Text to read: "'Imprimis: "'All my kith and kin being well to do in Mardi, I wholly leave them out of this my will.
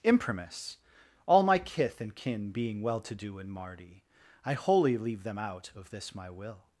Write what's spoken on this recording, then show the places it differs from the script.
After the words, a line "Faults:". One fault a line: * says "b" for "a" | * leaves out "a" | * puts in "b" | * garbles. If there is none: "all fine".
"'Imprimis: "'All my kith and kin being well to do in Mardi, I wholly leave them out of this my will.
Faults:
all fine